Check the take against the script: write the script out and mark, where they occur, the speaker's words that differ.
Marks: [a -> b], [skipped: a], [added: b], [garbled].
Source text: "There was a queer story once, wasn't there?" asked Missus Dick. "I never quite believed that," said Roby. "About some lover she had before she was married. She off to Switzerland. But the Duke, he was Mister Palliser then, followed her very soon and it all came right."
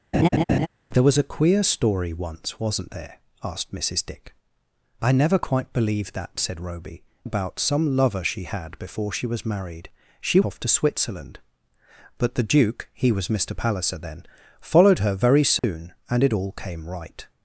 "There was a queer story once, wasn't there?" asked Missus Dick. "I never quite believed that," said Roby. "About some lover she had before she was married. She off to Switzerland. But the Duke, he was Mister Palliser then, followed her very soon and it all came right."